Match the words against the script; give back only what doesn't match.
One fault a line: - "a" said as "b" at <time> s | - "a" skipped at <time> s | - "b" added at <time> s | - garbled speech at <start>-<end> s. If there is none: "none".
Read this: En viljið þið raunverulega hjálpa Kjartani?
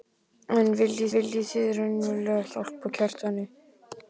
- "viljið" added at 1.1 s